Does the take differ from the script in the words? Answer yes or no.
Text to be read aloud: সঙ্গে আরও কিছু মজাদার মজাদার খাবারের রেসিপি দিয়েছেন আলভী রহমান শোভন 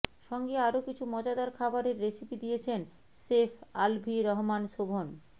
yes